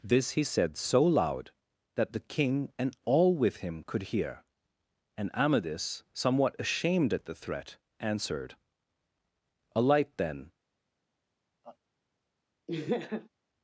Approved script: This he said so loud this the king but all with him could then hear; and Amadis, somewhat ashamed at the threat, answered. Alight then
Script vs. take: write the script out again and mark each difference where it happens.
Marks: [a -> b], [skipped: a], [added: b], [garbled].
This he said so loud [this -> that] the king [but -> and] all with him could [skipped: then] hear; and Amadis, somewhat ashamed at the threat, answered. Alight then